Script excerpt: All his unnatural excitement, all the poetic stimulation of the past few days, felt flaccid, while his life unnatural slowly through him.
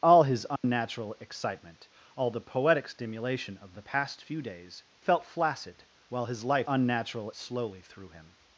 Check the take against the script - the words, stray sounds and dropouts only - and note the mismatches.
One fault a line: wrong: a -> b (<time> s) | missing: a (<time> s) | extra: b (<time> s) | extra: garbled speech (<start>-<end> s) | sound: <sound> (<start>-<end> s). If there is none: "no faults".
sound: dropout (0.6-0.6 s)